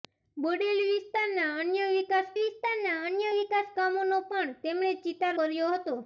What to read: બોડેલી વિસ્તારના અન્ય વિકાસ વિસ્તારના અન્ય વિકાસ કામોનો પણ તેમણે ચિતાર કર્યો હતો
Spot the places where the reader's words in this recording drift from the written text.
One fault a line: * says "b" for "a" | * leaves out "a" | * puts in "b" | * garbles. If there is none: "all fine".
all fine